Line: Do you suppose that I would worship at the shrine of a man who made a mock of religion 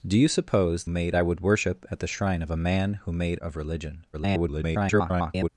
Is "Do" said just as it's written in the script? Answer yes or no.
yes